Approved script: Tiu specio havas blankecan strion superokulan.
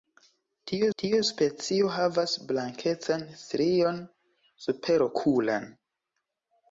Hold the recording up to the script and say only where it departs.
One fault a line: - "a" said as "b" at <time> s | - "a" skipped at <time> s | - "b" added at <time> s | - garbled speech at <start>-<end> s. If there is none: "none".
- "tiu" added at 1.0 s